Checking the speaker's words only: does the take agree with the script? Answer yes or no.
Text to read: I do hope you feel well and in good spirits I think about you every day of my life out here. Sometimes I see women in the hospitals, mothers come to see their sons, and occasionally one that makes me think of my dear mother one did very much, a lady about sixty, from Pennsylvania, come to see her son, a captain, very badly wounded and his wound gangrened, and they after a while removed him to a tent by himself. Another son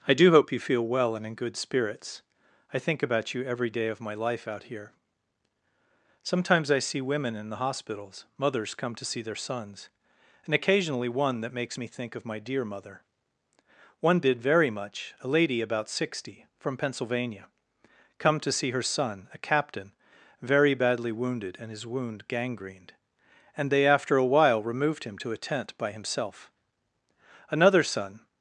yes